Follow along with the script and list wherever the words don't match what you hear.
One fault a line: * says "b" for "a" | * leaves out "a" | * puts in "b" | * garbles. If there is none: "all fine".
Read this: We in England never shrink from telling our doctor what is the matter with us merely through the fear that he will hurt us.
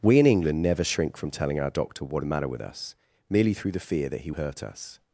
* leaves out "is"
* leaves out "will"